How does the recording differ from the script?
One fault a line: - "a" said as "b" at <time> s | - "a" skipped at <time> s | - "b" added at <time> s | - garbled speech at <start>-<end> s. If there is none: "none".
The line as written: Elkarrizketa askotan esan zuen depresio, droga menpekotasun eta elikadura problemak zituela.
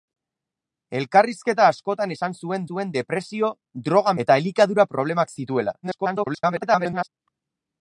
- "zuen" added at 2.7 s
- "menpekotasun" skipped at 4.2 s
- garbled speech at 5.8-7.1 s